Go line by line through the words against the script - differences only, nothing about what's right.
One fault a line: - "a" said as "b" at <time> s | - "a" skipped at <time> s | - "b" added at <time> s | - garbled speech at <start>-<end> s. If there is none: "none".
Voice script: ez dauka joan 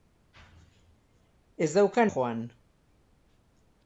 none